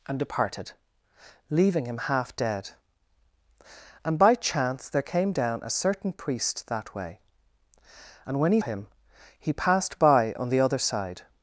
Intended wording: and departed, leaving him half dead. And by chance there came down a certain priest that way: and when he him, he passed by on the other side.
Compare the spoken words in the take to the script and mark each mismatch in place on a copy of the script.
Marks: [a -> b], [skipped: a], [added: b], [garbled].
and departed, leaving him half dead. And by chance there came down a certain priest that way: and when he him, he passed by on the other side.